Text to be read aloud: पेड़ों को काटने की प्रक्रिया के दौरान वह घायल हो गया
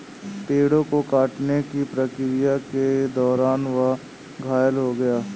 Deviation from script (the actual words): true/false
false